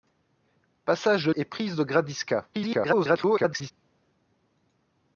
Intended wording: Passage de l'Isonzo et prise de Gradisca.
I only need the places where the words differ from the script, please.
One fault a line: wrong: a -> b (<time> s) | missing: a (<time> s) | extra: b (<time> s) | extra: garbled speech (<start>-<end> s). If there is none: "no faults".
missing: l'Isonzo (1.3 s)
extra: garbled speech (2.5-3.7 s)